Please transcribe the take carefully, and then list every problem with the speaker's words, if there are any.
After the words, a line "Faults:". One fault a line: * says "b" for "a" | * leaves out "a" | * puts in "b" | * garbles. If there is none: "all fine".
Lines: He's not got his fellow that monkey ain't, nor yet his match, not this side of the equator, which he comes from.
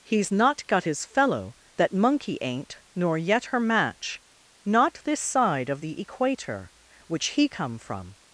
He's not got his fellow that monkey ain't, nor yet her match, not this side of the equator, which he come from.
Faults:
* says "her" for "his"
* says "come" for "comes"